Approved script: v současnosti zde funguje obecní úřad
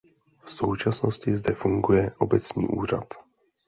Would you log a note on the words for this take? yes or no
no